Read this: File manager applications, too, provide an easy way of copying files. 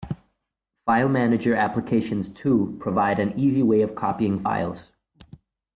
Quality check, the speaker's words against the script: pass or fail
pass